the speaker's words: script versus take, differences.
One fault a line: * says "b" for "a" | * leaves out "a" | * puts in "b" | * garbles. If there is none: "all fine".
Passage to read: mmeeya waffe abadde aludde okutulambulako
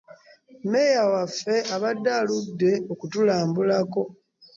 all fine